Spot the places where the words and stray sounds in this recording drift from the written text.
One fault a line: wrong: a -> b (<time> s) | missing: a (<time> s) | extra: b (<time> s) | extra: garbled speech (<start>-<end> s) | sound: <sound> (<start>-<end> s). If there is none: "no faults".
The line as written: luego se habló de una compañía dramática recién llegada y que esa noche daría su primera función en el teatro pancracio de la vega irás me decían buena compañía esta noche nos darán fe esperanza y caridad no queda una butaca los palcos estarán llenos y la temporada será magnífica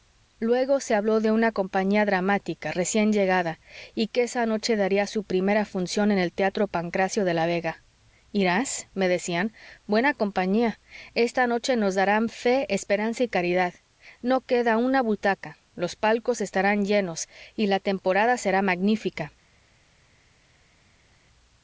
no faults